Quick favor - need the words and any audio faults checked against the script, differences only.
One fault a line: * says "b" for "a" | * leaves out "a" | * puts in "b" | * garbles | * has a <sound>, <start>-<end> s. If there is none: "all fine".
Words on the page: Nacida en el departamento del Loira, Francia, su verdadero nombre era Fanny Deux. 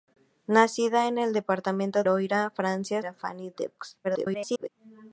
* leaves out "del"
* leaves out "su verdadero nombre"
* garbles